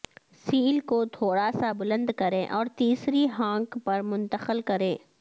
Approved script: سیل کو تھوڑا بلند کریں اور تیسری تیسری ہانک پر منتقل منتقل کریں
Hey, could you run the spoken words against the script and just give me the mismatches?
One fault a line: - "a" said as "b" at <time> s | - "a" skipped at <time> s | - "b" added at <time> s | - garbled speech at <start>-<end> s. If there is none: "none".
- "سا" added at 1.5 s
- "تیسری" skipped at 3.3 s
- "منتقل" skipped at 4.6 s